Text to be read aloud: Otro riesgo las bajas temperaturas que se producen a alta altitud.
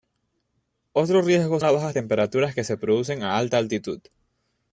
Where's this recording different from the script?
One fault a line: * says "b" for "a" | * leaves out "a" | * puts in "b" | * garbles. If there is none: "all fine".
all fine